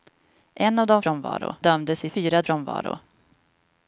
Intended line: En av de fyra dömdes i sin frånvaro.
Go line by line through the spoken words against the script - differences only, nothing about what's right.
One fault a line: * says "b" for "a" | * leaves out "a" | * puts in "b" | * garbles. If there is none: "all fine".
* says "frånvaro" for "fyra"
* says "fyra" for "sin"